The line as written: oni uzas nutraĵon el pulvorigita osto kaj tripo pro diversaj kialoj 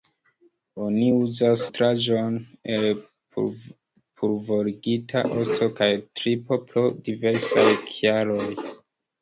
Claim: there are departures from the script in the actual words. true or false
false